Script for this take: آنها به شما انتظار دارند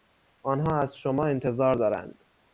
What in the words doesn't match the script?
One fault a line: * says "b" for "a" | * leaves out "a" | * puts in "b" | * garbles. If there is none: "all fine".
* says "از" for "به"